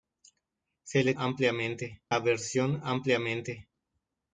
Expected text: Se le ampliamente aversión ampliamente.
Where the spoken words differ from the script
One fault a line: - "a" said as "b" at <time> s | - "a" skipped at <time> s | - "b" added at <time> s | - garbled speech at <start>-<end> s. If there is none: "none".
none